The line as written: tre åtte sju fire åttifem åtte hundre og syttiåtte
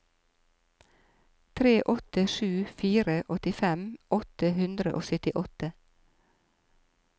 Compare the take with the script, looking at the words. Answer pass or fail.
pass